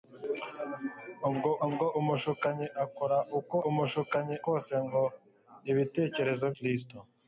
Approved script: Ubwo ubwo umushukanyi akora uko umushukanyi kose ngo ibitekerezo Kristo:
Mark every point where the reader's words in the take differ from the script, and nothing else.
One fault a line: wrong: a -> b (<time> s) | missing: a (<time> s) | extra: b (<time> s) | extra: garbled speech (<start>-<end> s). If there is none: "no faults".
no faults